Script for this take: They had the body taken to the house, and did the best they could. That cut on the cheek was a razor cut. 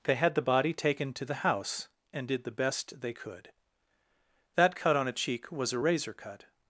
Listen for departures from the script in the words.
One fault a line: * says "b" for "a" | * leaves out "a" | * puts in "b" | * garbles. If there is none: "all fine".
* says "a" for "the"